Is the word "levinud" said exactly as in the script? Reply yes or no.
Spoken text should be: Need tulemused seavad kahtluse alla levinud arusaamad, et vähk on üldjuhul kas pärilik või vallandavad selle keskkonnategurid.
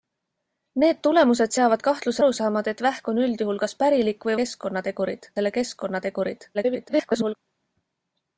no